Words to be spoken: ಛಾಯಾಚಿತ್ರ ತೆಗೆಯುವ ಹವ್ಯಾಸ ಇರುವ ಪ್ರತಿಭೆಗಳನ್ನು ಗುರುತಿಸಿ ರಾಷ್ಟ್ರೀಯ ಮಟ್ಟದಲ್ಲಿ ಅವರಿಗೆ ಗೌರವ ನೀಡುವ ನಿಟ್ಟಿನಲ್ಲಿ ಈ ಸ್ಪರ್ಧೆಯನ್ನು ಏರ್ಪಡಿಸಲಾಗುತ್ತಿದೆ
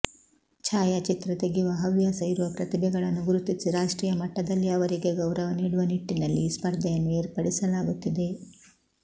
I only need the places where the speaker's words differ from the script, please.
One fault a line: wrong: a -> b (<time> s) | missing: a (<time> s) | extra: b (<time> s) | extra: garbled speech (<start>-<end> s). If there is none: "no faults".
no faults